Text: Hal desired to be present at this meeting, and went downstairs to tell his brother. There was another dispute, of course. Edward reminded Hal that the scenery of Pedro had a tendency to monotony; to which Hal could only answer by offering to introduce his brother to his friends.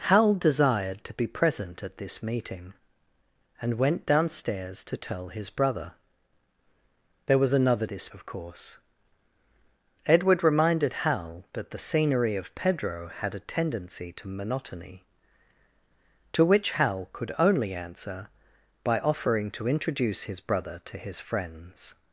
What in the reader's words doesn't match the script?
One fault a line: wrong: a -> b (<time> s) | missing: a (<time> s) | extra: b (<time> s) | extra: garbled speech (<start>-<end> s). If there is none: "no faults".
wrong: dispute -> this (7.9 s)